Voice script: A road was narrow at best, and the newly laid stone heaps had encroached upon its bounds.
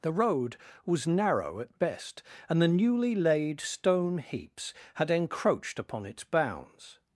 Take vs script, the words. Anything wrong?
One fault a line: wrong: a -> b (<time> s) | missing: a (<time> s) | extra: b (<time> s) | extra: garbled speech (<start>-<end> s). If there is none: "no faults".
wrong: A -> The (0.0 s)